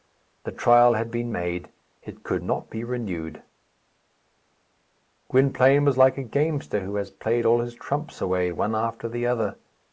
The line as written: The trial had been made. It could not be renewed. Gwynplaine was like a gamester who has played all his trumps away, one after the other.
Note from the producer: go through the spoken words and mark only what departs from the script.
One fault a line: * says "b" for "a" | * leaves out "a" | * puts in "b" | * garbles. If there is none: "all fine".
all fine